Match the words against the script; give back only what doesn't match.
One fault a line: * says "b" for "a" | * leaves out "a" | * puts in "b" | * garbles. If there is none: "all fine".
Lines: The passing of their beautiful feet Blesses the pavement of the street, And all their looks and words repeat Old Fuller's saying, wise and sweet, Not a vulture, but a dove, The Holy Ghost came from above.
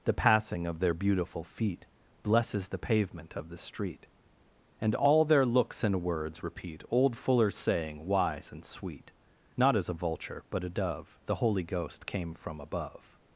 * puts in "as"